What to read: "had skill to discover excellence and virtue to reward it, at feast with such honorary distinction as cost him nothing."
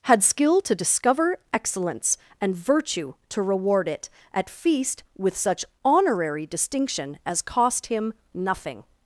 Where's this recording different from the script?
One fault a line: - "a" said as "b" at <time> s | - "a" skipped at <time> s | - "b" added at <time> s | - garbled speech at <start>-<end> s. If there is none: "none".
none